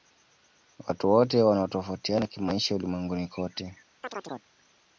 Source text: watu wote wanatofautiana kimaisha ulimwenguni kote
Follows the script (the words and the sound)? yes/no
no